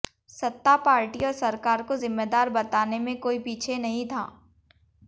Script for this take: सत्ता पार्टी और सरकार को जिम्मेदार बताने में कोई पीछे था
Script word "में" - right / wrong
right